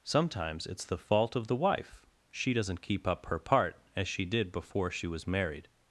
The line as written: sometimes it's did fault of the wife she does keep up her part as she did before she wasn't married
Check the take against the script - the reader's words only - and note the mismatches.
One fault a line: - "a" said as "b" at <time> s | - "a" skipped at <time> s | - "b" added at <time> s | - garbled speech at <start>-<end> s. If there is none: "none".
- "did" said as "the" at 0.8 s
- "does" said as "doesn't" at 2.5 s
- "wasn't" said as "was" at 5.0 s